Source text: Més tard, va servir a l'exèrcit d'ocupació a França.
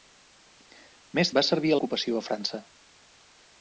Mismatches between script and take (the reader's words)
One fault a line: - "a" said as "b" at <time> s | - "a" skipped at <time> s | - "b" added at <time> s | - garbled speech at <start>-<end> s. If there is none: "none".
- "tard" skipped at 1.3 s
- "l'exèrcit" skipped at 1.8 s